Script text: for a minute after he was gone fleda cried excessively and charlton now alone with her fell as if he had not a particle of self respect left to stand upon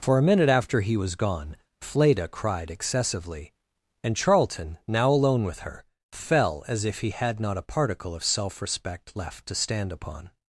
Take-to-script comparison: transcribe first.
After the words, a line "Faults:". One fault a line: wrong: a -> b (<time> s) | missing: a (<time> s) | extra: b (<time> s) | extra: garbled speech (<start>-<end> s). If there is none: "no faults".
for a minute after he was gone fleda cried excessively and charlton now alone with her fell as if he had not a particle of self respect left to stand upon
Faults:
no faults